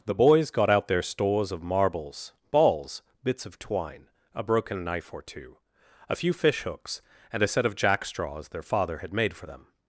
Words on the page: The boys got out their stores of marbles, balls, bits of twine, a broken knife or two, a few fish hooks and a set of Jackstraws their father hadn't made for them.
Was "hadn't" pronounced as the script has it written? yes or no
no